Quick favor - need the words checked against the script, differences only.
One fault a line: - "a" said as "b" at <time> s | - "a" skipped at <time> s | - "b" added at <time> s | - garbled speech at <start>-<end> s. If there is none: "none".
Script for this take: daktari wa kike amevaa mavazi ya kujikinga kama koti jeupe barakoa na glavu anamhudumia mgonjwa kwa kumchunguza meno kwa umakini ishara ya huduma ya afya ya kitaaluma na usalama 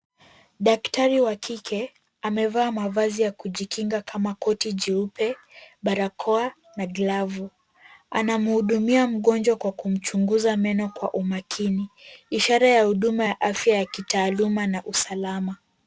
none